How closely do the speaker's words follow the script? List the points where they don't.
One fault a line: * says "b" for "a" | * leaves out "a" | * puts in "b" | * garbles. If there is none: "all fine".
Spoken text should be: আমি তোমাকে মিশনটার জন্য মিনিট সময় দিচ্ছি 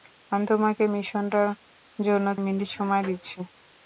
all fine